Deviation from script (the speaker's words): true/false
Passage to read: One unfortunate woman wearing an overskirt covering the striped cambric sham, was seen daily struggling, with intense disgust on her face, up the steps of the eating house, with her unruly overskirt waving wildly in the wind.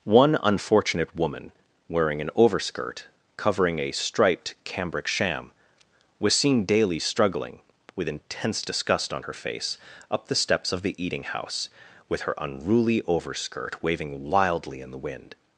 true